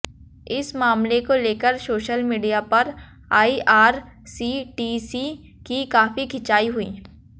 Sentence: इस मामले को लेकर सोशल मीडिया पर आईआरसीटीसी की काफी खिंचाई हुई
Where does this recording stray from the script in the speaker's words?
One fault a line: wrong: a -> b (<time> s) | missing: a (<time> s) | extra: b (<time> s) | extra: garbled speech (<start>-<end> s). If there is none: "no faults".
no faults